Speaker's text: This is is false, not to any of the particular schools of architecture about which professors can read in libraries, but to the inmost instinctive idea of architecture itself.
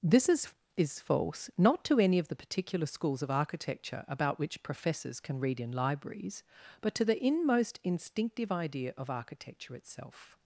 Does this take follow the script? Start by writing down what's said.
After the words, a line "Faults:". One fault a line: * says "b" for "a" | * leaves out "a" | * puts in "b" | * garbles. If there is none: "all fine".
This is is false, not to any of the particular schools of architecture about which professors can read in libraries, but to the inmost instinctive idea of architecture itself.
Faults:
all fine